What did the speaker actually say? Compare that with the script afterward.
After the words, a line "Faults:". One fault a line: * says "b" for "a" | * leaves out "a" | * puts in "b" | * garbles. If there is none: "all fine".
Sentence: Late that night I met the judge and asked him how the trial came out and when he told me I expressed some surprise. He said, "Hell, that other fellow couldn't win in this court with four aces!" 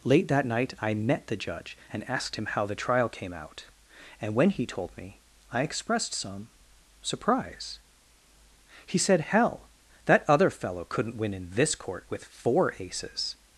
Late that night I met the judge and asked him how the trial came out and when he told me I expressed some surprise. He said, "Hell, that other fellow couldn't win in this court with four aces!"
Faults:
all fine